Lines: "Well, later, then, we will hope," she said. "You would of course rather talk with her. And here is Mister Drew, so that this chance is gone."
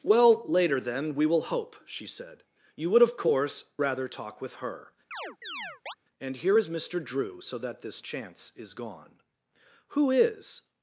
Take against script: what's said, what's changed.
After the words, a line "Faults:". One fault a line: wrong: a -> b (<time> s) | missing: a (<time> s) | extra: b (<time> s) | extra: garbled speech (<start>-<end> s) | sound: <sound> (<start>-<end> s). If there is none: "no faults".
"Well, later, then, we will hope," she said. "You would of course rather talk with her. And here is Mister Drew, so that this chance is gone." "Who is
Faults:
sound: chirp (5.1-6.0 s)
extra: Who is (9.9 s)